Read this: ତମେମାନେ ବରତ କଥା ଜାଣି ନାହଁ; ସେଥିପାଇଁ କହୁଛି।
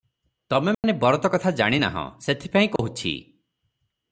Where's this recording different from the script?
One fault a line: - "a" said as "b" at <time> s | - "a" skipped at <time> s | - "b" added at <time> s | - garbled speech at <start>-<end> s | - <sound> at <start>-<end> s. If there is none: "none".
- dropout at 0.7-0.8 s
- dropout at 2.8-2.8 s